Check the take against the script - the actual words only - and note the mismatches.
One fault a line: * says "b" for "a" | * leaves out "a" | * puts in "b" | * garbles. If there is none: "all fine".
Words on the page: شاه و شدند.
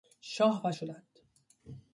all fine